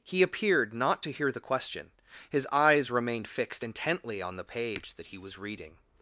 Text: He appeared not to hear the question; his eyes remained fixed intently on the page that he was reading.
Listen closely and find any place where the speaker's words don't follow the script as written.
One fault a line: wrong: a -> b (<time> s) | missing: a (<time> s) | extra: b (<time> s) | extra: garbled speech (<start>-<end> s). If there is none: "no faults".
no faults